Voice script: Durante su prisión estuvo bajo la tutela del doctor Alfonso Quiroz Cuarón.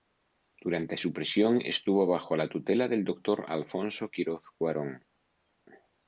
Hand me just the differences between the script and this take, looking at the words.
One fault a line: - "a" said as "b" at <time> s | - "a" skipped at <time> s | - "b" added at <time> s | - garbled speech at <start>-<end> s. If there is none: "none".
none